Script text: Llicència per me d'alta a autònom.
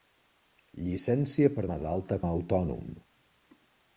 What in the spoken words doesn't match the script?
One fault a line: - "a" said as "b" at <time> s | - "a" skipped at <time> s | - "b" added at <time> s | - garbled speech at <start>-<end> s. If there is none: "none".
none